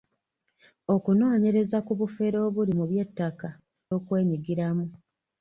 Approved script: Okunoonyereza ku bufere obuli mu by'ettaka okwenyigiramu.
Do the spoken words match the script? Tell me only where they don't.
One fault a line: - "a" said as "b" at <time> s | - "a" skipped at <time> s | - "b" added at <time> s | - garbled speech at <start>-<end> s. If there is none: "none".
none